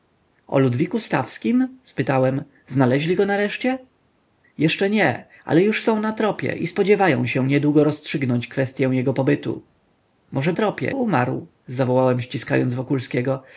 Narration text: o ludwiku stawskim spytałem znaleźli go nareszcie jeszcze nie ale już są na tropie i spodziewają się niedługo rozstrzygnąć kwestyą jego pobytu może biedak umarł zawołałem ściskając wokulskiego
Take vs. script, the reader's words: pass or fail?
fail